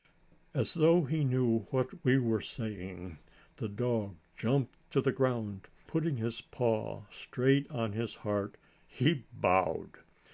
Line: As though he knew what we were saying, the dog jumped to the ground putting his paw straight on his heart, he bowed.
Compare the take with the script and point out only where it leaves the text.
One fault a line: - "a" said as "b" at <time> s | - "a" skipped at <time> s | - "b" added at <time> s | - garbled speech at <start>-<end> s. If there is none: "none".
none